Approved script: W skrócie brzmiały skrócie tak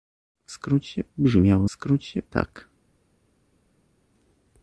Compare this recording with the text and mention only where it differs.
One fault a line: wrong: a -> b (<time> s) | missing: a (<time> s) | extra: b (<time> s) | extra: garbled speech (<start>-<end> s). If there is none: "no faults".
no faults